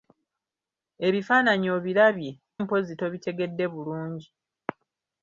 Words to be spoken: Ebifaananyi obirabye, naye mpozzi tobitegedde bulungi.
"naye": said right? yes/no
no